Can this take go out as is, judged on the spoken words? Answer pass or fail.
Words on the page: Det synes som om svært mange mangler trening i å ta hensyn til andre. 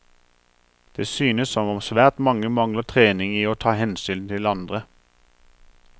pass